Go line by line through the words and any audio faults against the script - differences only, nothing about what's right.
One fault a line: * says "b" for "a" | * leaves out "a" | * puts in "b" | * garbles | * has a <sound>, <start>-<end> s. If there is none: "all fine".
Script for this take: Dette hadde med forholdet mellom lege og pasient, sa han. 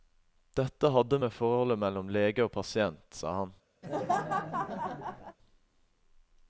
* has a laugh, 3.8-5.4 s